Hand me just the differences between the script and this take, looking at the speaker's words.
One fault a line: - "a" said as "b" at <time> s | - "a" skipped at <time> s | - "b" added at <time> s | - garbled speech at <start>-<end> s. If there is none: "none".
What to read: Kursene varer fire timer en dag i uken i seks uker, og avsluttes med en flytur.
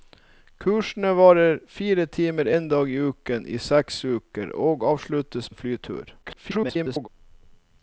- "med" skipped at 5.5 s
- garbled speech at 6.2-7.1 s